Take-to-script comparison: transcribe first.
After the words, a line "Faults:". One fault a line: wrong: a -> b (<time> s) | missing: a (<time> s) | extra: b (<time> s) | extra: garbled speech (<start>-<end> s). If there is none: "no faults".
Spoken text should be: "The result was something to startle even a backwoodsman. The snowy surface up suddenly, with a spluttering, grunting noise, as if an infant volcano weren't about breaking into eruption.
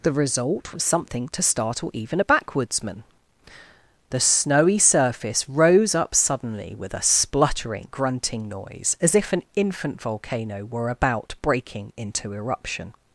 "The result was something to startle even a backwoodsman. The snowy surface rose up suddenly, with a spluttering, grunting noise, as if an infant volcano were about breaking into eruption.
Faults:
extra: rose (5.5 s)
wrong: weren't -> were (10.7 s)